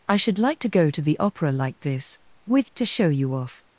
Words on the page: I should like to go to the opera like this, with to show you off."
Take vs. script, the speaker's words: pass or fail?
pass